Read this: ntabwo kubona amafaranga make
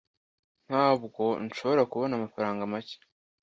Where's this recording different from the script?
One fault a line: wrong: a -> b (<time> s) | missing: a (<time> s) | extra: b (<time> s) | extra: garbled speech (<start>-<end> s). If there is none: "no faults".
extra: nshobora (1.4 s)